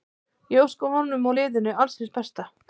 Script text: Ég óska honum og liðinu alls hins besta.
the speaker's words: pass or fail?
pass